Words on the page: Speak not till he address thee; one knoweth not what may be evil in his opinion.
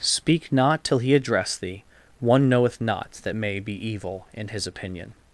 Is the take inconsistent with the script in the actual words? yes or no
yes